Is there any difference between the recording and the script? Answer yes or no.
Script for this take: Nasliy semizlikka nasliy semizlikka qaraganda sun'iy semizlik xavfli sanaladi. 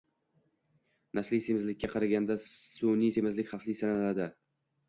yes